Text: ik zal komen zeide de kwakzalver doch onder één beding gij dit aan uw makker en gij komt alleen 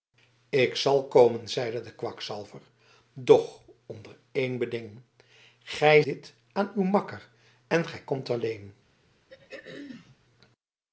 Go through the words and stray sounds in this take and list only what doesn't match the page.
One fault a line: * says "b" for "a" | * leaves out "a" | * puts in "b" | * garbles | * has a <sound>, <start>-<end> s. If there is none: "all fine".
* has a throat clearing, 9.3-10.2 s